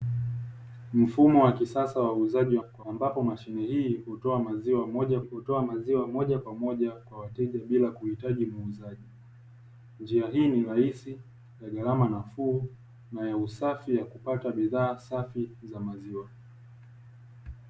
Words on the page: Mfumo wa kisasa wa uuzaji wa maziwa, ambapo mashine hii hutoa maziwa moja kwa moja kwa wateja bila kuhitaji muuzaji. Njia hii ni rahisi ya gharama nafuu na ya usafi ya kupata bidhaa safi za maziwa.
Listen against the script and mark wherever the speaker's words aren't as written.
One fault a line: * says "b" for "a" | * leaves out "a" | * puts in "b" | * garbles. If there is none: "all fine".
* says "kwa" for "maziwa"
* puts in "hutoa maziwa moja"